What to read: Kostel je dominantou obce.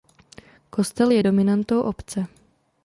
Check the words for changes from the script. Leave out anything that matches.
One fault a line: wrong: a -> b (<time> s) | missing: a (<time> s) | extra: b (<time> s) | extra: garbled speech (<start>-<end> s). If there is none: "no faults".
no faults